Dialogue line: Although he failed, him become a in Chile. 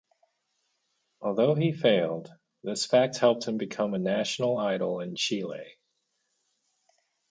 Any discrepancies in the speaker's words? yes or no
yes